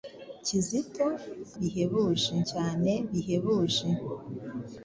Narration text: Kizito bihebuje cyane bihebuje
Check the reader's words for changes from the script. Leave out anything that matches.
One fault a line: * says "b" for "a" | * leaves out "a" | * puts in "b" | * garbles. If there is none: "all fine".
all fine